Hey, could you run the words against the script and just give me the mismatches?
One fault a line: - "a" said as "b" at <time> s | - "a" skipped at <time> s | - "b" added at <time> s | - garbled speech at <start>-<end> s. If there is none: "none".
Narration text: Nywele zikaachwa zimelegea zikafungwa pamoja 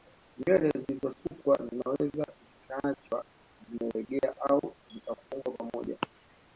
- "zilizosukwa zinaweza" added at 0.8 s
- "au" added at 4.5 s